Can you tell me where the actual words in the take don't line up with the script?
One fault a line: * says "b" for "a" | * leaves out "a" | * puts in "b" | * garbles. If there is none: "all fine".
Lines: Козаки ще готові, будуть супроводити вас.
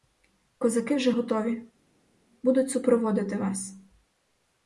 * says "вже" for "ще"